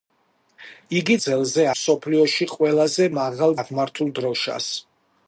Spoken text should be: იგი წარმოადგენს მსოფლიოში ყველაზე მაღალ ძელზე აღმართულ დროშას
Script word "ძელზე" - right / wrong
wrong